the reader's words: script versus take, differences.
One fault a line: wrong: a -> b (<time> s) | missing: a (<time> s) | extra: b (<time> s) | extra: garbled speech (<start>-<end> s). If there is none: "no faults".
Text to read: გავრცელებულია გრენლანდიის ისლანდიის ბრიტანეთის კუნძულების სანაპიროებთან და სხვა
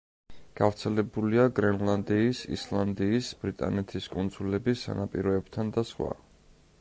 no faults